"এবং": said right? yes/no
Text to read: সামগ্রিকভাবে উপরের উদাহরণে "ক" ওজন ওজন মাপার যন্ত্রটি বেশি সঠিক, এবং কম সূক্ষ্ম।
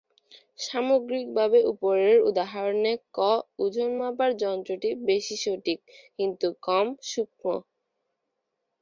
no